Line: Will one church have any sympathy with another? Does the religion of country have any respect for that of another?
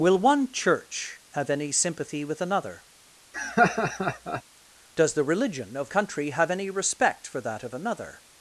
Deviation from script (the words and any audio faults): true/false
true